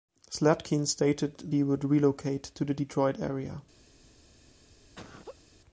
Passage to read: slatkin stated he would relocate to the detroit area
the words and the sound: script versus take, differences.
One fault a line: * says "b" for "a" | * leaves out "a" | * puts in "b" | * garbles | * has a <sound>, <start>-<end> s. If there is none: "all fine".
* has a laugh, 4.9-5.4 s